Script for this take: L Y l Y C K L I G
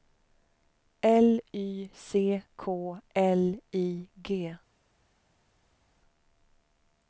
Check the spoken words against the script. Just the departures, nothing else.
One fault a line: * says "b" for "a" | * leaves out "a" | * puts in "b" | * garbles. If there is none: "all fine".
* leaves out "l Y"